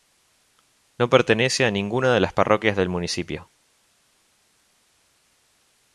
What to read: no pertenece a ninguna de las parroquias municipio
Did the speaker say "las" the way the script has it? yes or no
yes